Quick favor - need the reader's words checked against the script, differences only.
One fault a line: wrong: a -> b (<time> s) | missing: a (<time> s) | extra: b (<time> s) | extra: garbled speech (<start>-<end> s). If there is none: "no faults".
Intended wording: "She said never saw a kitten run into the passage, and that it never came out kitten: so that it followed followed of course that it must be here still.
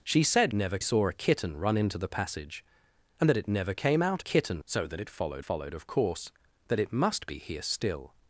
no faults